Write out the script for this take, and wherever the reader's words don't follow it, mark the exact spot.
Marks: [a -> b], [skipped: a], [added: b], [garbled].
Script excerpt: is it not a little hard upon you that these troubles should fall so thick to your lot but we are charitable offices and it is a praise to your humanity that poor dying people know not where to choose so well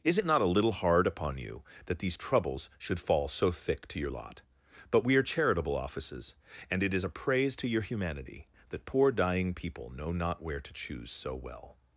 is it not a little hard upon you that these troubles should fall so thick to your lot but we are charitable offices and it is a praise to your humanity that poor dying people know not where to choose so well